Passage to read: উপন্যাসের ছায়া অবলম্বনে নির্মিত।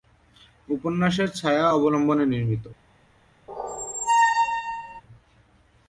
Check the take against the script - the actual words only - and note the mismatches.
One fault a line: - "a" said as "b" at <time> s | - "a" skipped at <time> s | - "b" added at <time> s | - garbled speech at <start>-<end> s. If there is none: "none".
none